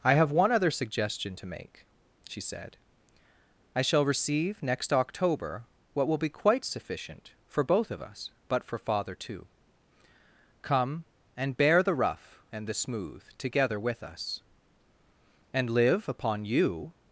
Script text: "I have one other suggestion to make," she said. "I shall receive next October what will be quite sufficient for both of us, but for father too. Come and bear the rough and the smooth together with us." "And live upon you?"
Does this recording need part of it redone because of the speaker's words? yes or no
no